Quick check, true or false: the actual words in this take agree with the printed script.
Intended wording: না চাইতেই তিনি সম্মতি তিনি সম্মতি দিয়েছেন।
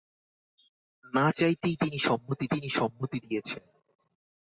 true